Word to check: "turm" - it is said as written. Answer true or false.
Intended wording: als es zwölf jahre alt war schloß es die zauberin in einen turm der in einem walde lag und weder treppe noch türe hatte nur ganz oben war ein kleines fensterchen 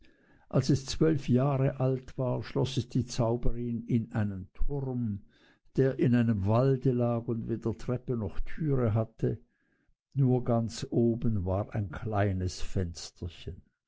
true